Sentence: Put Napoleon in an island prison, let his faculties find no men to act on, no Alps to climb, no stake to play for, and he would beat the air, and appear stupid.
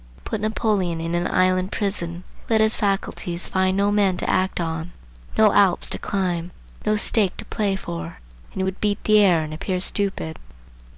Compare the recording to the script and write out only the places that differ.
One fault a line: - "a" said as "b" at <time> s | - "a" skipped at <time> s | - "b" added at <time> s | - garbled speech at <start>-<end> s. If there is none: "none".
none